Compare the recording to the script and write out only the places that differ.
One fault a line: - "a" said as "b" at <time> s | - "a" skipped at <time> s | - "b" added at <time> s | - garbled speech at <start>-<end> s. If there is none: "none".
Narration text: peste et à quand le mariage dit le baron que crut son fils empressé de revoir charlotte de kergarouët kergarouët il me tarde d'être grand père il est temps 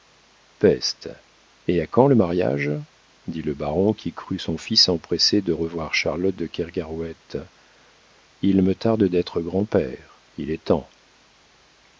- "que" said as "qui" at 3.9 s
- "kergarouët" skipped at 7.4 s